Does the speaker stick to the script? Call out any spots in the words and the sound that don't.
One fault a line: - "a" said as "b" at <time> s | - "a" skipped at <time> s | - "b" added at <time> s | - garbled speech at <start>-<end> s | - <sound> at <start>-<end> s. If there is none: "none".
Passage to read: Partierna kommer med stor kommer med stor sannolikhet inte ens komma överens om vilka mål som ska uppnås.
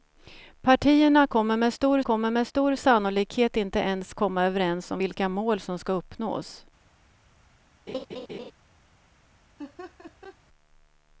- laugh at 7.9-8.5 s
- laugh at 9.6-10.4 s